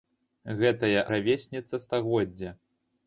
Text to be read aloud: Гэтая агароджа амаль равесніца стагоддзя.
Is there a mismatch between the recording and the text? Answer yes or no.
yes